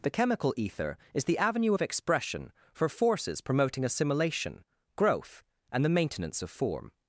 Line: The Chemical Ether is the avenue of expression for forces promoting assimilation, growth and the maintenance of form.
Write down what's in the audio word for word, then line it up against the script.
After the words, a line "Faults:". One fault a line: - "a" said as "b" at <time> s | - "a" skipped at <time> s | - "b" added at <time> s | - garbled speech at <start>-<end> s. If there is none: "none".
The Chemical Ether is the avenue of expression for forces promoting assimilation, growth and the maintenance of form.
Faults:
none